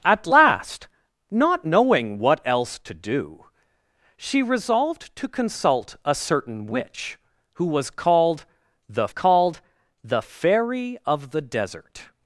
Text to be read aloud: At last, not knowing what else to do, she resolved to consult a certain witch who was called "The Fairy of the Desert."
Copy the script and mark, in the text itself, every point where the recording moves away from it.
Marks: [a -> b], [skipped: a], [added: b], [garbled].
At last, not knowing what else to do, she resolved to consult a certain witch who was called "The [added: called The] Fairy of the Desert."